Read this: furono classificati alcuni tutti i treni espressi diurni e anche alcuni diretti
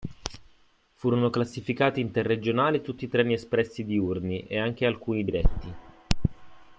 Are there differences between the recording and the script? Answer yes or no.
yes